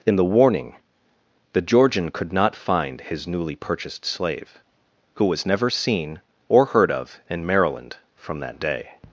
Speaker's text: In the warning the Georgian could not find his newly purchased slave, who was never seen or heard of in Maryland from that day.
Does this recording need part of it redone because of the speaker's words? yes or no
no